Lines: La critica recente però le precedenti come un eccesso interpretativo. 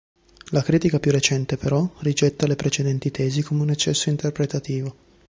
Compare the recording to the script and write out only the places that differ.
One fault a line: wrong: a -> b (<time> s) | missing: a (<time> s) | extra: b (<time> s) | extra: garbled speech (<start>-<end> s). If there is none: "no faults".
extra: più (1.0 s)
extra: rigetta (2.0 s)
extra: tesi (3.1 s)